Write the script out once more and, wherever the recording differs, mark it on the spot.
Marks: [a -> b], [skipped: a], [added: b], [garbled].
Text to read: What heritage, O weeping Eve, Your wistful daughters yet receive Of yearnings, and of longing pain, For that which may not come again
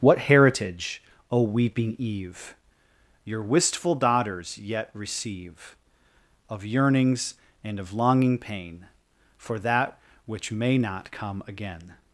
What heritage, O weeping Eve, Your wistful daughters yet receive Of yearnings, and of longing pain, For that which may not come again